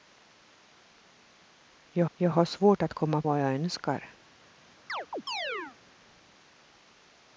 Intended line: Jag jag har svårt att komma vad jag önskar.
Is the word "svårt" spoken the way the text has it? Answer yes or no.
yes